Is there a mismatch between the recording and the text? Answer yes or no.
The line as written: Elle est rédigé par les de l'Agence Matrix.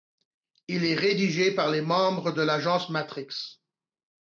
yes